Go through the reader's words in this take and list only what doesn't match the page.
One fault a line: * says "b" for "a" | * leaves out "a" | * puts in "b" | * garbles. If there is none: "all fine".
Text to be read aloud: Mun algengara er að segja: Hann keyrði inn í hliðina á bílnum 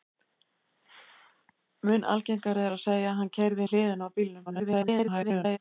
* leaves out "inn"
* garbles